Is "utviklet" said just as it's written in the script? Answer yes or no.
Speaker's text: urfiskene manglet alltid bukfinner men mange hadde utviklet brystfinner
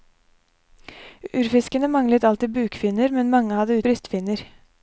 no